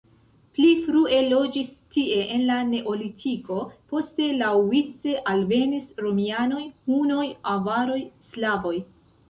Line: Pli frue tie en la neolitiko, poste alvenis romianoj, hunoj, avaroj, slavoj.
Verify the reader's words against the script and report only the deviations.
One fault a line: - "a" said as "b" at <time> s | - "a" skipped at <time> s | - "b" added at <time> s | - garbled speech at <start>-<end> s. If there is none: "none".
- "loĝis" added at 1.3 s
- "laŭvice" added at 4.4 s